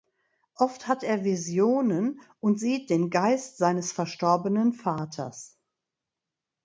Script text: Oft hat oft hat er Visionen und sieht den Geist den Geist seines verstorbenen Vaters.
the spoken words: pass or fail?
fail